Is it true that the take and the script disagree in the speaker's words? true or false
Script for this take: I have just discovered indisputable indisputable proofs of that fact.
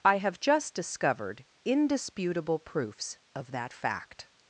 true